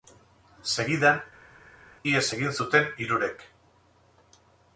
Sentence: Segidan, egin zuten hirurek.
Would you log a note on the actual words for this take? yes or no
yes